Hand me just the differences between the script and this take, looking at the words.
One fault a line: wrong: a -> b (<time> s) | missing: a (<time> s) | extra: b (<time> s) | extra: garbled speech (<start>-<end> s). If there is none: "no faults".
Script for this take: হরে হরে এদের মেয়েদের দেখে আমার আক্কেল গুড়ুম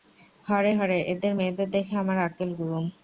no faults